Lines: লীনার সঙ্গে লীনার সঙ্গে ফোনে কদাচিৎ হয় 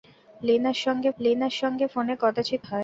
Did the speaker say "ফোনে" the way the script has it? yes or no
yes